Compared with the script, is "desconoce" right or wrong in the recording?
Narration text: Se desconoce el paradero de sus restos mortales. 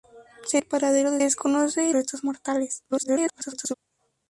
wrong